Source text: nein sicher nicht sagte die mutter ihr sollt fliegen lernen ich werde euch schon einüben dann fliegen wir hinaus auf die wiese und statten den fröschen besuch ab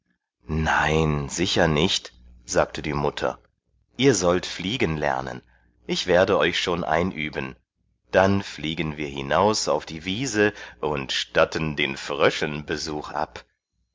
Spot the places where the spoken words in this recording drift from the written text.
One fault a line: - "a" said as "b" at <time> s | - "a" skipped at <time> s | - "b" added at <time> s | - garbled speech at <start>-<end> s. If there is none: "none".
none